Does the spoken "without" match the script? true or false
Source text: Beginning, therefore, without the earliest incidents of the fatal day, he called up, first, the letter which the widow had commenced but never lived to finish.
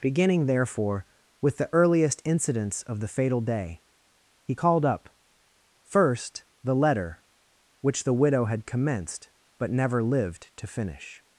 false